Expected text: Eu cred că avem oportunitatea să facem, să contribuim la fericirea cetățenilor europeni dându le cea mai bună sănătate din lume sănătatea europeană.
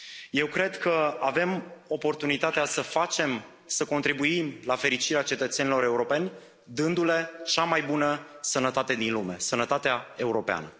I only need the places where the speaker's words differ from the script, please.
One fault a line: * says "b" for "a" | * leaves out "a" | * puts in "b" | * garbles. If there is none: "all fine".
all fine